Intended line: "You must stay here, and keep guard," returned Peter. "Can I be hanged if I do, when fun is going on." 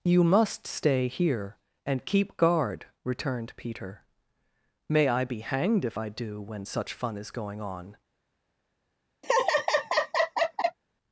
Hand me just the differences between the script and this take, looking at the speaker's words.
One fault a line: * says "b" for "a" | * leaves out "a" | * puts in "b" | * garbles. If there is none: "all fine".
* says "May" for "Can"
* puts in "such"